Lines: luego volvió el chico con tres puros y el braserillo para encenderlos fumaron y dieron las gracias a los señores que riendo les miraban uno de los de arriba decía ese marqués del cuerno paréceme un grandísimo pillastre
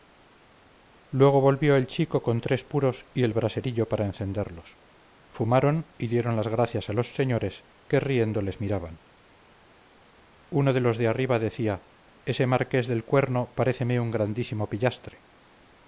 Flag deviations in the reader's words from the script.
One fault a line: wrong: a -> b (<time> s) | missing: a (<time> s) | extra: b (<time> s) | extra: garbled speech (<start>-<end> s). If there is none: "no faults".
no faults